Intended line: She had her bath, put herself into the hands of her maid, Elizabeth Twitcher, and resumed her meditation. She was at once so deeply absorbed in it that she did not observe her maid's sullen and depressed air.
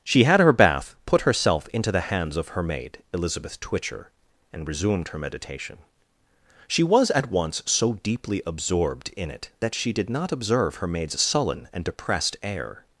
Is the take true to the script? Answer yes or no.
yes